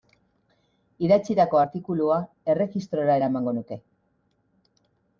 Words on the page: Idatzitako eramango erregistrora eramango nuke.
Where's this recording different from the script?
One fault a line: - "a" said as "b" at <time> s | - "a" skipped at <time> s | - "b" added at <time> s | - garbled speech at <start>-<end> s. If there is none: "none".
- "eramango" said as "artikulua" at 1.6 s